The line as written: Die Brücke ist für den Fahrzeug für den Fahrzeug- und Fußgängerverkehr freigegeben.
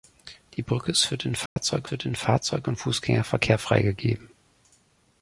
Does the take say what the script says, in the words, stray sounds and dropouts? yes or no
no